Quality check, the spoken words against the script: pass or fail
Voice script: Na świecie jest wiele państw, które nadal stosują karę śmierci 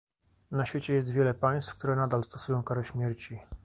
pass